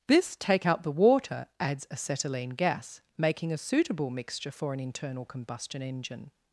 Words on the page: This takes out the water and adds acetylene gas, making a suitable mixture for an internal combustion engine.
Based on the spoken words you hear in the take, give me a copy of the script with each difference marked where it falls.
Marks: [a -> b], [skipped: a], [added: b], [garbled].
This [takes -> take] out the water [skipped: and] adds acetylene gas, making a suitable mixture for an internal combustion engine.